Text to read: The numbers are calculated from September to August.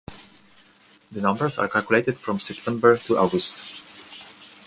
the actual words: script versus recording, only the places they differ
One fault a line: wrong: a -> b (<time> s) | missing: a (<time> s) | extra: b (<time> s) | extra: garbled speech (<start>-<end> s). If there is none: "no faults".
no faults